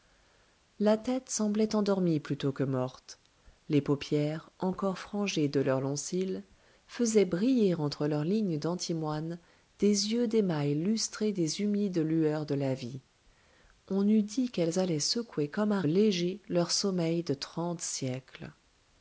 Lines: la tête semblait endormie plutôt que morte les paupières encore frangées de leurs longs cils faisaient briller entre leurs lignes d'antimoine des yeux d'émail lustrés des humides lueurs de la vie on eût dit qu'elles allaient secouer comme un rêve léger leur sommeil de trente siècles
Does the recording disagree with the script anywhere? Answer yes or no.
yes